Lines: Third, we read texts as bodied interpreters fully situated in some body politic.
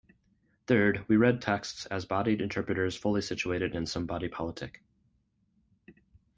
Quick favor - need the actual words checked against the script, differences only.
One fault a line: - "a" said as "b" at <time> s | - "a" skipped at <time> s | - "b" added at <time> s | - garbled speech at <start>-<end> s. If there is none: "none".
none